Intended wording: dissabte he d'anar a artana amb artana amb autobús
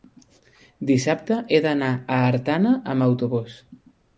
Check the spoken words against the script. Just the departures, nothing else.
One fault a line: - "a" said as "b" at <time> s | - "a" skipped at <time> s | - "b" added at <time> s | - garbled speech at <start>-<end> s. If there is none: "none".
- "artana amb" skipped at 3.1 s